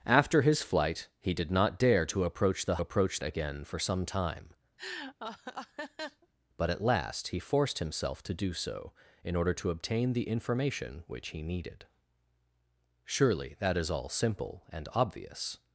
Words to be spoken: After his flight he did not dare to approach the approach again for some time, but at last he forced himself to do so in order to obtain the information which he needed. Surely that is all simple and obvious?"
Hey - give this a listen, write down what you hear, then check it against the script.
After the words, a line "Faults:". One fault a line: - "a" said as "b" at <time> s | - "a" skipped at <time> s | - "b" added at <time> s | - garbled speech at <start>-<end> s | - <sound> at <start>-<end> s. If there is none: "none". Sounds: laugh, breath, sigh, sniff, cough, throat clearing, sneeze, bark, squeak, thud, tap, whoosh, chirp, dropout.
After his flight he did not dare to approach the approach again for some time, but at last he forced himself to do so in order to obtain the information which he needed. Surely that is all simple and obvious?"
Faults:
- laugh at 4.8-6.3 s